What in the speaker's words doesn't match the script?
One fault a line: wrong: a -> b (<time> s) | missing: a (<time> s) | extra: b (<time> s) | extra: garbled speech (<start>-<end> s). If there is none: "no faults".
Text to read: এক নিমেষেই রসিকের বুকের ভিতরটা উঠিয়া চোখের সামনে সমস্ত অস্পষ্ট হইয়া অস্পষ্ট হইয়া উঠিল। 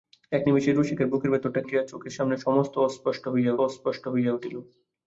no faults